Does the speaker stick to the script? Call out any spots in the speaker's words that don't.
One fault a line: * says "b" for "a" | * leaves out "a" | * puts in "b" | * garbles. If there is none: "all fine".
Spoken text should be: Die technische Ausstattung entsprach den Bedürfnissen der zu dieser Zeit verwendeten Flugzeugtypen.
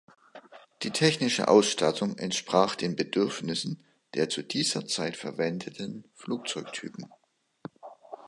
all fine